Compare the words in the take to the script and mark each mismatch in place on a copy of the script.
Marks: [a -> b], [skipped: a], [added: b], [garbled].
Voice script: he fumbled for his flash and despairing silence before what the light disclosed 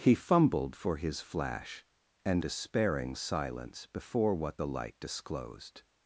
he fumbled for his flash and despairing silence before what the light disclosed